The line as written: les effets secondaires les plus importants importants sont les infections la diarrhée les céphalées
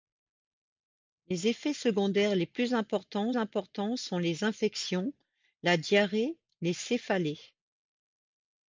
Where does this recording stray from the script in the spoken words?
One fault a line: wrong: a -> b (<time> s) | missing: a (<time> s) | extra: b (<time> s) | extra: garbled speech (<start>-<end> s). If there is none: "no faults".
no faults